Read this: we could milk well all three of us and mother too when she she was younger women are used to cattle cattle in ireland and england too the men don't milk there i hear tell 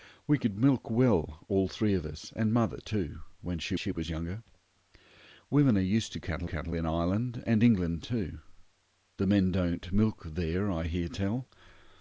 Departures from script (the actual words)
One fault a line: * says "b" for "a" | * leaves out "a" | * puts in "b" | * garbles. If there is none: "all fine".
all fine